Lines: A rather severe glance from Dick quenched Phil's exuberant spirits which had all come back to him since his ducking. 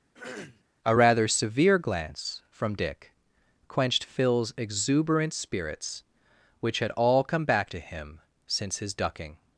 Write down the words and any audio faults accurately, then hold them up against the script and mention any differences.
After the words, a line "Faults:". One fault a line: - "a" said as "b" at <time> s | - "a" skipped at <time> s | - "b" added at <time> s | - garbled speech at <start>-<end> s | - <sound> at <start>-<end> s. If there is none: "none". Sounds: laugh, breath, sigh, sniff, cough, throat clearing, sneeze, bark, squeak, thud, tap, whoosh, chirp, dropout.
A rather severe glance from Dick quenched Phil's exuberant spirits which had all come back to him since his ducking.
Faults:
- throat clearing at 0.1-0.6 s